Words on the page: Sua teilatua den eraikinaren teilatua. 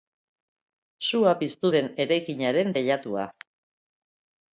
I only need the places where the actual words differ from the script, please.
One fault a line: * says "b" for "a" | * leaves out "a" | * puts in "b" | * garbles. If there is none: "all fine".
* says "piztu" for "teilatua"